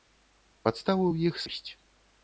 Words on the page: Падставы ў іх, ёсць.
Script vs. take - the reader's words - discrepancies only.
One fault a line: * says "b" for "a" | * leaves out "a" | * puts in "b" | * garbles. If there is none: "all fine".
all fine